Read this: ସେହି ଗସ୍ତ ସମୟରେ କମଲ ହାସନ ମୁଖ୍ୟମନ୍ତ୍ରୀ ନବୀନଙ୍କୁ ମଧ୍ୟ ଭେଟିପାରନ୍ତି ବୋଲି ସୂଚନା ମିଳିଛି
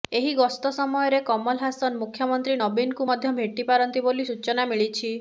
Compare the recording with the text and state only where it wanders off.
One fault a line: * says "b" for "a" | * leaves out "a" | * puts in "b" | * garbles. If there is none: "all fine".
* says "ଏହି" for "ସେହି"